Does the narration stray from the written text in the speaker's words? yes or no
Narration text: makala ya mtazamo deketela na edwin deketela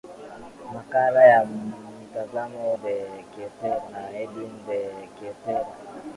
no